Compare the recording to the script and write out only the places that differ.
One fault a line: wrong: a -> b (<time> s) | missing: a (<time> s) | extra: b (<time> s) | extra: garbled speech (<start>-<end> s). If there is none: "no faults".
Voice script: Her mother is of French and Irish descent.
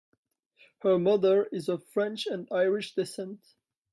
no faults